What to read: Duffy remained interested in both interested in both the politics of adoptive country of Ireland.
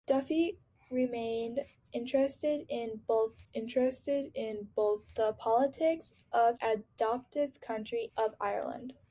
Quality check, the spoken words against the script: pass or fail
pass